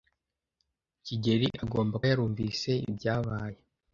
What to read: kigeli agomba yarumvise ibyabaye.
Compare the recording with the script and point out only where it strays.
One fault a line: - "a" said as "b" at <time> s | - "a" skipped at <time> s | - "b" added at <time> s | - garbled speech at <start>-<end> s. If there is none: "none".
none